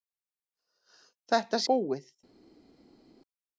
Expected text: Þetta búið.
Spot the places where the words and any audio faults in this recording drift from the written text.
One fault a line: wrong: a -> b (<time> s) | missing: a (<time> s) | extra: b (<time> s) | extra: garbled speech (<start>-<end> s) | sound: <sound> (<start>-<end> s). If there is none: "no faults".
no faults